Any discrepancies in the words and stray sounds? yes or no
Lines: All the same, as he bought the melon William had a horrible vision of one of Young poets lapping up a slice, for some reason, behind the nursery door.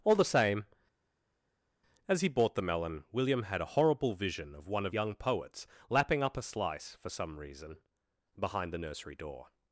no